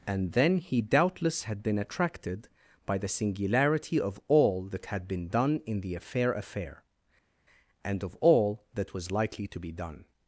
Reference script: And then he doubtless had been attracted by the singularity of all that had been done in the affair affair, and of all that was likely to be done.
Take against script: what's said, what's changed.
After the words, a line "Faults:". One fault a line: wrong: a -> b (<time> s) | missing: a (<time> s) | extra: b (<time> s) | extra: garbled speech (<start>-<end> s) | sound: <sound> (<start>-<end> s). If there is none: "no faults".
And then he doubtless had been attracted by the singularity of all that had been done in the affair affair, and of all that was likely to be done.
Faults:
no faults